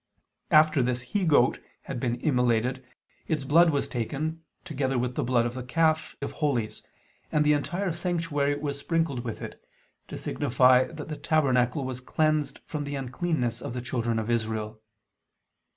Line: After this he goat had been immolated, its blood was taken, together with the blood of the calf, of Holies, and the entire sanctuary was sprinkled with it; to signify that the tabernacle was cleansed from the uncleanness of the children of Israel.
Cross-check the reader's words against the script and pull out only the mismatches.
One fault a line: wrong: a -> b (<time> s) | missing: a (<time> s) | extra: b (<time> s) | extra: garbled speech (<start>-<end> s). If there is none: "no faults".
no faults